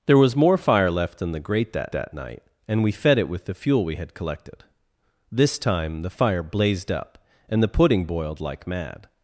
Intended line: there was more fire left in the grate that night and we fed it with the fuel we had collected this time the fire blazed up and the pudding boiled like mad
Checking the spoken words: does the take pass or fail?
fail